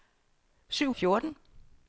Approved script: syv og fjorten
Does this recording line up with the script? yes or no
yes